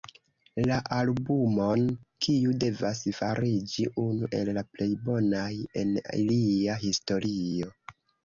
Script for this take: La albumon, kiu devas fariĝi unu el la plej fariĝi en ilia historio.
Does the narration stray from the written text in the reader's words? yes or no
yes